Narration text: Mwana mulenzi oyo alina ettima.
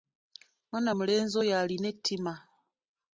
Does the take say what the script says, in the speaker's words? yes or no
yes